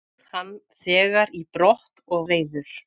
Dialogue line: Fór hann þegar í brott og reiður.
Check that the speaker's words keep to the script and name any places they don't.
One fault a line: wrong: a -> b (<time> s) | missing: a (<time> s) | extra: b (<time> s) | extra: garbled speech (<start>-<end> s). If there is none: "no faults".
no faults